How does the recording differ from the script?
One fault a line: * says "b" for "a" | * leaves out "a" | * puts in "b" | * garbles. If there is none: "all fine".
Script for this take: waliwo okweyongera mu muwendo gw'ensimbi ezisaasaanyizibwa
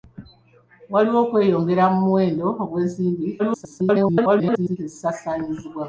* garbles